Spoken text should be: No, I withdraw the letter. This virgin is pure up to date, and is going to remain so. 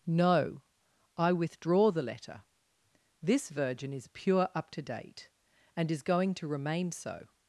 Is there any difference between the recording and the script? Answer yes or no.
no